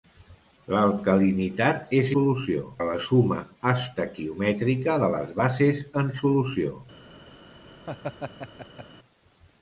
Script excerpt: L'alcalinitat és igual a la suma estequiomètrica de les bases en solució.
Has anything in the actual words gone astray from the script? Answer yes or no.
yes